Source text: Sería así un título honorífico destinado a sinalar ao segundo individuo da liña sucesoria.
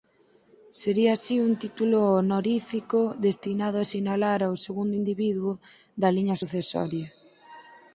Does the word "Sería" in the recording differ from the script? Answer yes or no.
no